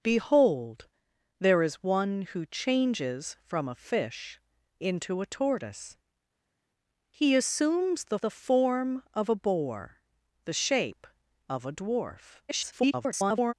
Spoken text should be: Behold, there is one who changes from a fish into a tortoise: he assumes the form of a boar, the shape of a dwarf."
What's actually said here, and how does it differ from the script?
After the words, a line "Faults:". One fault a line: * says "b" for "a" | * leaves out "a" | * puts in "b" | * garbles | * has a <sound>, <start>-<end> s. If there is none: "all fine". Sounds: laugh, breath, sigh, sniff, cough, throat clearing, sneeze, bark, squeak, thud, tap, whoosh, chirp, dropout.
Behold, there is one who changes from a fish into a tortoise: he assumes the the form of a boar, the shape of a dwarf." [garbled]
Faults:
* puts in "the"
* garbles